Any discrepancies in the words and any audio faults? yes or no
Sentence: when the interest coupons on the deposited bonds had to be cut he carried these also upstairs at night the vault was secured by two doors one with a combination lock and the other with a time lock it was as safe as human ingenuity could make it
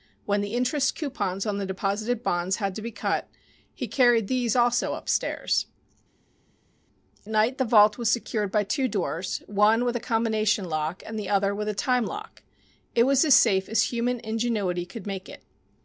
yes